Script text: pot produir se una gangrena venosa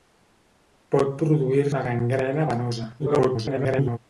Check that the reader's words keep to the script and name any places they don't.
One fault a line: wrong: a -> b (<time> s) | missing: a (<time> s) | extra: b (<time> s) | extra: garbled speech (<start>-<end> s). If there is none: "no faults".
missing: se (1.7 s)
extra: garbled speech (3.0-4.0 s)